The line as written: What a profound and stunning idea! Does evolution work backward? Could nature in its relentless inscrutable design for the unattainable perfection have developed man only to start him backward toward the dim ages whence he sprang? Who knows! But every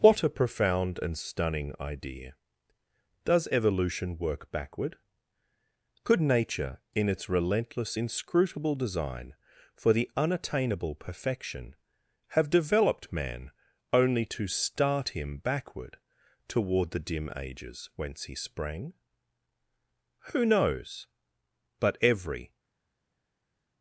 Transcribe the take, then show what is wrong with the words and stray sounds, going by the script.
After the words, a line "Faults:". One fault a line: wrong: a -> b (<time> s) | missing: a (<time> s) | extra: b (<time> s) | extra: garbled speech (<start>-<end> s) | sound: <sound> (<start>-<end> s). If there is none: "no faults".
What a profound and stunning idea! Does evolution work backward? Could nature in its relentless inscrutable design for the unattainable perfection have developed man only to start him backward toward the dim ages whence he sprang? Who knows! But every
Faults:
no faults